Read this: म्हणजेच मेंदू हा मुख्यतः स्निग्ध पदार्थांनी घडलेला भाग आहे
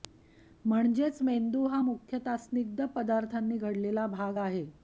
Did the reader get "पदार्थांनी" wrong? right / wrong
right